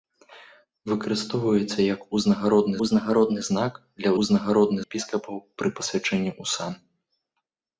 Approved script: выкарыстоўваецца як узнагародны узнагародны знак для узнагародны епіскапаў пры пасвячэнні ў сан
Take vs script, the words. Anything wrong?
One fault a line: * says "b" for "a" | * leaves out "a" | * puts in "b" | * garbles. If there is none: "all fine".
all fine